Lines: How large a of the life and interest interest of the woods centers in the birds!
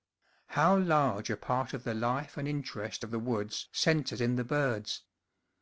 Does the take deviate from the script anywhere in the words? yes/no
yes